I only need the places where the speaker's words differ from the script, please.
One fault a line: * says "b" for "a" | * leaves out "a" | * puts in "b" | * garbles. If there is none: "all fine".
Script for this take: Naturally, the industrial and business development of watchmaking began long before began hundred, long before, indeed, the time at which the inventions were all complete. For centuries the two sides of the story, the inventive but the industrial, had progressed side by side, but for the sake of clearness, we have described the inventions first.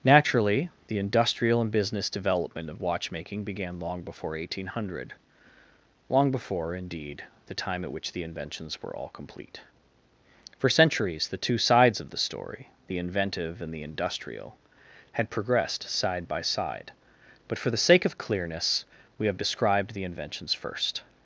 * says "eighteen" for "began"
* says "and" for "but"